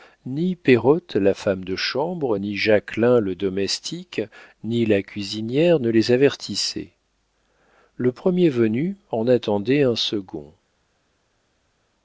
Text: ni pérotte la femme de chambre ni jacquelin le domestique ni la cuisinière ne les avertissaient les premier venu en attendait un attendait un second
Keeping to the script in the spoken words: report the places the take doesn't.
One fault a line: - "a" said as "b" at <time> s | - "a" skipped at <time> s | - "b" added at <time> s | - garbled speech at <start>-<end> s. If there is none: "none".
- "les" said as "le" at 8.0 s
- "attendait un" skipped at 10.0 s